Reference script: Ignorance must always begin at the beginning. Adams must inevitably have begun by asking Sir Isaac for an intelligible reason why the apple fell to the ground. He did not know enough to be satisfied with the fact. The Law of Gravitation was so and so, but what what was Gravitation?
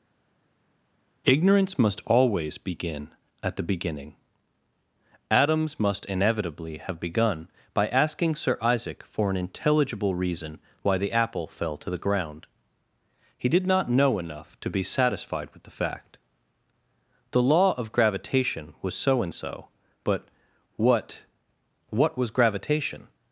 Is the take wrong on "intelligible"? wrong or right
right